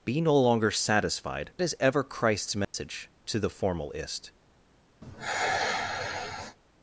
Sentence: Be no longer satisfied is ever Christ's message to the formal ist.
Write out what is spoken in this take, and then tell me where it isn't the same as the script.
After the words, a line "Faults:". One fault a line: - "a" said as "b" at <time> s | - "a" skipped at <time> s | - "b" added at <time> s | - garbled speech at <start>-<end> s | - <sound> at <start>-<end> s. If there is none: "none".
Be no longer satisfied is ever Christ's message to the formal ist.
Faults:
- dropout at 2.6-2.7 s
- sigh at 5.0-6.6 s